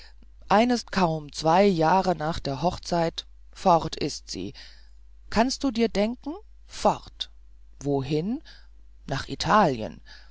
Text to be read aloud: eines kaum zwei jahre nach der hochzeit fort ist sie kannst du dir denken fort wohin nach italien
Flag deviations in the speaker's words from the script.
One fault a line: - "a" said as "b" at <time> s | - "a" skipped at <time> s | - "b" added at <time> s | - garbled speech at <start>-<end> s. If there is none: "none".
none